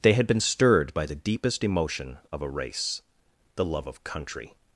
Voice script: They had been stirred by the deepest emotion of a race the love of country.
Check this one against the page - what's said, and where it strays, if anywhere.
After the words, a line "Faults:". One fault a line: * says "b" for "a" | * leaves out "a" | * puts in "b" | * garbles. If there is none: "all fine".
They had been stirred by the deepest emotion of a race the love of country.
Faults:
all fine